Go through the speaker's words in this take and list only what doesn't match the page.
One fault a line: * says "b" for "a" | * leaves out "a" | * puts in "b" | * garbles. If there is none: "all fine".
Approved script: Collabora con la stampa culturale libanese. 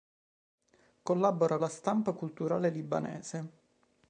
* leaves out "con"